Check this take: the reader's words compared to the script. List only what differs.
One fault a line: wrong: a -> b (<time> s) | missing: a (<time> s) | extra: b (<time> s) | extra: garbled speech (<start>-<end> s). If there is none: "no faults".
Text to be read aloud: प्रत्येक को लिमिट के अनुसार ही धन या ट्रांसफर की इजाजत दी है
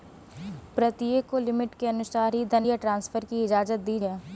no faults